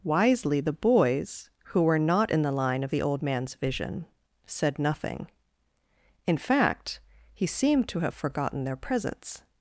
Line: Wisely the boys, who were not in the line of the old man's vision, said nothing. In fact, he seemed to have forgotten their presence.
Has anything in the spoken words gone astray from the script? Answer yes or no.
no